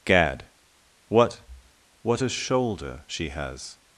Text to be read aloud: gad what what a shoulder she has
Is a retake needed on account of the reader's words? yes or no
no